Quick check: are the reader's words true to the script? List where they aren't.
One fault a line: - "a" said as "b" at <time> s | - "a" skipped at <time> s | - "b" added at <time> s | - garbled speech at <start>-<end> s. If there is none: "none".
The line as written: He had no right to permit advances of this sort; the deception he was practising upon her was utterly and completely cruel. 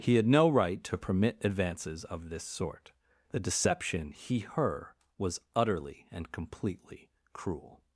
- "was practising upon" skipped at 4.4 s